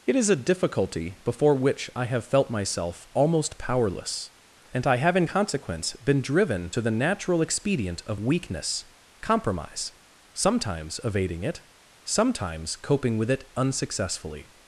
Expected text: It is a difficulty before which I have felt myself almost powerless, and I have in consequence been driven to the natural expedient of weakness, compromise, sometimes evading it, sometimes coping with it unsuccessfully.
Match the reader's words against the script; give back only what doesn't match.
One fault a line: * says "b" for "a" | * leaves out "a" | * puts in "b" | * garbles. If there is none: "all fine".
all fine